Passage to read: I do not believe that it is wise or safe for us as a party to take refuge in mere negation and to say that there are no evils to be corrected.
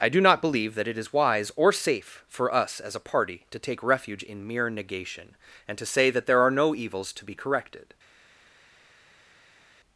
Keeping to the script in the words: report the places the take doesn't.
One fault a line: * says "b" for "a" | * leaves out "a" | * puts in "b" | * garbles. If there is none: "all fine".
all fine